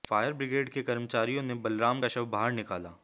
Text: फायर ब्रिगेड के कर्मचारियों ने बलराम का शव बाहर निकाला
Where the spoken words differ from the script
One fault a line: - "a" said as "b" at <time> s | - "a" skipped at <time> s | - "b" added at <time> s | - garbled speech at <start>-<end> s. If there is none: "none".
none